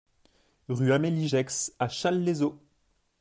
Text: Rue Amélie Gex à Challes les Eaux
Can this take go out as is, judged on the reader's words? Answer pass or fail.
pass